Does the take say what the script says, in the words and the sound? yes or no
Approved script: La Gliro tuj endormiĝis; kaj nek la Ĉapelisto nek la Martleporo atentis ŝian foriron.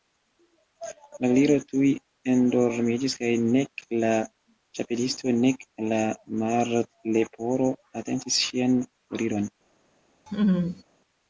no